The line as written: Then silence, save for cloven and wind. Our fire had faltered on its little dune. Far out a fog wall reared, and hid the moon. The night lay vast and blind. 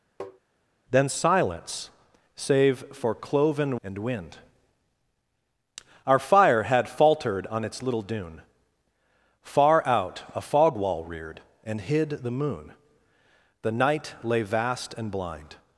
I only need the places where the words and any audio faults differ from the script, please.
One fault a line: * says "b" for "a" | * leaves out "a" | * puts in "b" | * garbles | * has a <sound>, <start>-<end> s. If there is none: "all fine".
* has a tap, 0.2-0.4 s